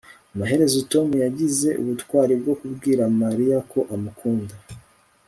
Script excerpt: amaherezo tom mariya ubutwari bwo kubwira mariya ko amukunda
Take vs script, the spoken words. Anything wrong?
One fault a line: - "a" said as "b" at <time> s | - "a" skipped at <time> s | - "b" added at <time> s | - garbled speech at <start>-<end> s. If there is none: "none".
- "mariya" said as "yagize" at 1.2 s